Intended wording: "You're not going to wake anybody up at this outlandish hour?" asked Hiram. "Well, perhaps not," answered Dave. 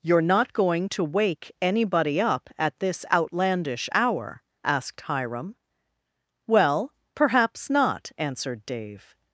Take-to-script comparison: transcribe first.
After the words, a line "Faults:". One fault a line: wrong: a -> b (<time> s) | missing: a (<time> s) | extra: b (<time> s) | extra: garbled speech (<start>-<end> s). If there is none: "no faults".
"You're not going to wake anybody up at this outlandish hour?" asked Hiram. "Well, perhaps not," answered Dave.
Faults:
no faults